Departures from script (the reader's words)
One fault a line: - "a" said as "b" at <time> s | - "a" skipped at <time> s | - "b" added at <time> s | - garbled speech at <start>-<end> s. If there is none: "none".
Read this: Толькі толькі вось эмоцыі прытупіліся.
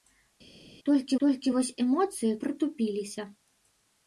none